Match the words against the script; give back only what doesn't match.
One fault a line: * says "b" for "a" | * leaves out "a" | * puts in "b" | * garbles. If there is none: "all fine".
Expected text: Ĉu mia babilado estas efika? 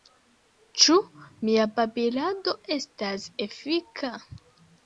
all fine